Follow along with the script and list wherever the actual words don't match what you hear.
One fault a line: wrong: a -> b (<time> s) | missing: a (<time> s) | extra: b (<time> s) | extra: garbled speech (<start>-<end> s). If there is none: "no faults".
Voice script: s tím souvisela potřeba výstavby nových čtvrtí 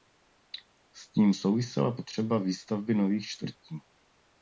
no faults